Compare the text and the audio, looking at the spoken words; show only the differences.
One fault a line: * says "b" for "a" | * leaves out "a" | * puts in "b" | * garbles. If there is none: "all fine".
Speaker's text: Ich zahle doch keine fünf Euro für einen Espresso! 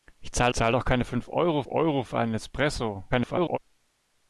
* puts in "zahle"
* puts in "Euro"
* garbles